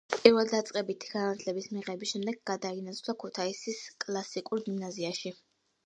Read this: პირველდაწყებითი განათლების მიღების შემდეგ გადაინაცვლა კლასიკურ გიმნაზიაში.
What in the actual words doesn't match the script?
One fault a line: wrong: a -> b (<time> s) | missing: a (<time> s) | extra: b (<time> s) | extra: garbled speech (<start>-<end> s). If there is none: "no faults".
extra: ქუთაისის (3.3 s)